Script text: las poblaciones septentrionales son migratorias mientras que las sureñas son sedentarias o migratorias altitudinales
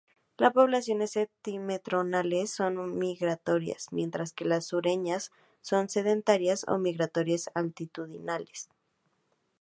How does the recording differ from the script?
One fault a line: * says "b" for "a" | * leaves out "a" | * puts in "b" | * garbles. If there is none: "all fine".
all fine